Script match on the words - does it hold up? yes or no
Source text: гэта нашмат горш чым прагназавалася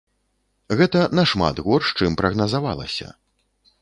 yes